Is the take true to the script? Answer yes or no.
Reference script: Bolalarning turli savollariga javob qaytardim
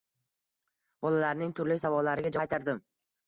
no